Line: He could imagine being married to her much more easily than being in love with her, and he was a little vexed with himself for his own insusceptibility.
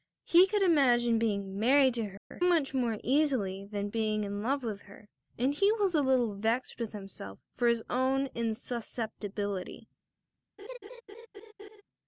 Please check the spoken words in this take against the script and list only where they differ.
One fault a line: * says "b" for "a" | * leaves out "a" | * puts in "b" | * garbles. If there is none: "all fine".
all fine